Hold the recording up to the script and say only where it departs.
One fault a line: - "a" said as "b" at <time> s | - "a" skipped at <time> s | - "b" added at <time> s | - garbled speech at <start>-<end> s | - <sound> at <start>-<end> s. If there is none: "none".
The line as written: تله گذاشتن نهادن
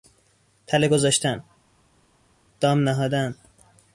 - "دام" added at 2.6 s